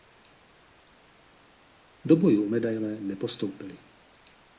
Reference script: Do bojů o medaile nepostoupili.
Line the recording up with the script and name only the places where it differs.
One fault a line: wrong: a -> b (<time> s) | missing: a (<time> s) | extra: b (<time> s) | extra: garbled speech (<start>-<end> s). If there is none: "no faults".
no faults